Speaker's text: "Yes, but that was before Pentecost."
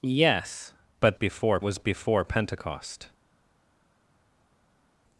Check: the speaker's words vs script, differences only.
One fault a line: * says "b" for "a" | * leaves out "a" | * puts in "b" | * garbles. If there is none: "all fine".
* says "before" for "that"